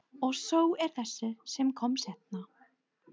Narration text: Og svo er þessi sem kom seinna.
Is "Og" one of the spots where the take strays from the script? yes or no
no